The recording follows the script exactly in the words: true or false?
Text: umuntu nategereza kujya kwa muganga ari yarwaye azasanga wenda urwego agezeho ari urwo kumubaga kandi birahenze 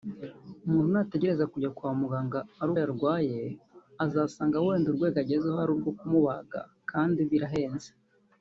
true